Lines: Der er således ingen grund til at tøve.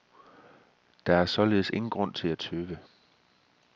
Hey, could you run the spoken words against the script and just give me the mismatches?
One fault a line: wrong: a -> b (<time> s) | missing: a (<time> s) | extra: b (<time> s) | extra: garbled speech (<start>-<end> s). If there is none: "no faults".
no faults